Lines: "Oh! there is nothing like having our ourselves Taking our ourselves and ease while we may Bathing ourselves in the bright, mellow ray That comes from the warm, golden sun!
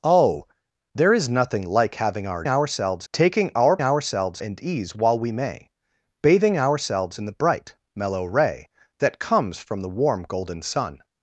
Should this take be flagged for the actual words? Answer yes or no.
no